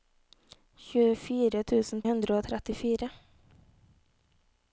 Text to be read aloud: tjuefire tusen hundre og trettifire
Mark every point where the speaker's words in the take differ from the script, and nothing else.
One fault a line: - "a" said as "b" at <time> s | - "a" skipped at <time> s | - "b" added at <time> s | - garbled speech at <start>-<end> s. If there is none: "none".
none